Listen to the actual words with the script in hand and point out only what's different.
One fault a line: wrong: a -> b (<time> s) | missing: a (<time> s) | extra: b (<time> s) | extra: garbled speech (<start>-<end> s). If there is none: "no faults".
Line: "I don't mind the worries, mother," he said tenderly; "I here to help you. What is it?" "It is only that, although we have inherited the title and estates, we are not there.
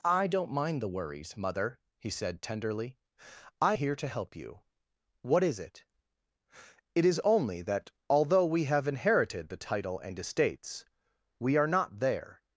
no faults